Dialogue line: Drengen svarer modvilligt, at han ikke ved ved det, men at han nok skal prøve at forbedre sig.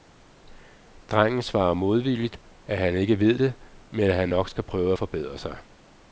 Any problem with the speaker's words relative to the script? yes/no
yes